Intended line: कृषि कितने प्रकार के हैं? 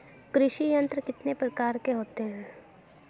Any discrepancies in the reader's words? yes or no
yes